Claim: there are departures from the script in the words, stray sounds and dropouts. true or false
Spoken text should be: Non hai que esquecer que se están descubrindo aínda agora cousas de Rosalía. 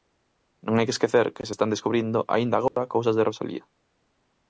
true